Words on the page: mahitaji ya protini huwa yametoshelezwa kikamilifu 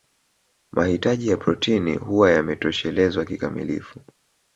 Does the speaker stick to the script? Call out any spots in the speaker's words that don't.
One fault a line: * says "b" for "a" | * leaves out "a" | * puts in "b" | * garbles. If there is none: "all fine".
all fine